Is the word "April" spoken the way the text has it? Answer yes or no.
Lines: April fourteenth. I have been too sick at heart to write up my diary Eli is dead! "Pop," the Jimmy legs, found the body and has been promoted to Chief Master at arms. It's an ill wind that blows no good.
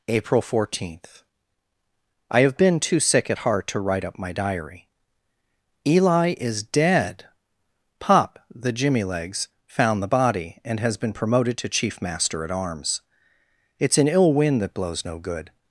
yes